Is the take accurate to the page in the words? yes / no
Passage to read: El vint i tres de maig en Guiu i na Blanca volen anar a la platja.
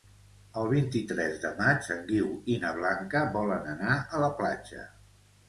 yes